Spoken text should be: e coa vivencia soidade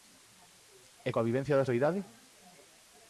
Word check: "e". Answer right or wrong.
right